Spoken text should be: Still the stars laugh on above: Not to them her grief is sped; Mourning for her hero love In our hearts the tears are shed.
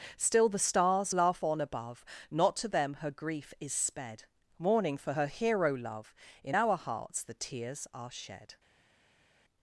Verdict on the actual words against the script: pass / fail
pass